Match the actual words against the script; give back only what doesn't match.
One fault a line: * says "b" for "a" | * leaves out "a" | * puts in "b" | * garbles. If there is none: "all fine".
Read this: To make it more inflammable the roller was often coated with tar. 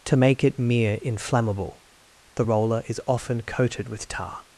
* says "mere" for "more"
* says "is" for "was"